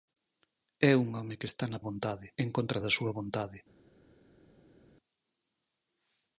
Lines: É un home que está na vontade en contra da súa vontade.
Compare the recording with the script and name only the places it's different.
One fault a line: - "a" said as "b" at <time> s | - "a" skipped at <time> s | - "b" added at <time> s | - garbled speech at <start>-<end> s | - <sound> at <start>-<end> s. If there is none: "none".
none